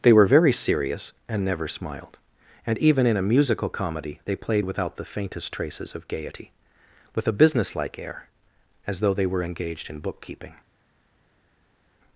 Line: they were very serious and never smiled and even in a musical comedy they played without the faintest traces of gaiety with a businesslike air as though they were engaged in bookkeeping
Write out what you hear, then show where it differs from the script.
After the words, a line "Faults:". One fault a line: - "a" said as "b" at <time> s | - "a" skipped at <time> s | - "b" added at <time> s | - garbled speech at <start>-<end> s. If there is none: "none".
they were very serious and never smiled and even in a musical comedy they played without the faintest traces of gaiety with a businesslike air as though they were engaged in bookkeeping
Faults:
none